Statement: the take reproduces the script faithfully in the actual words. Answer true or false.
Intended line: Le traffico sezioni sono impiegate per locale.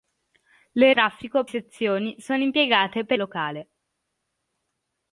true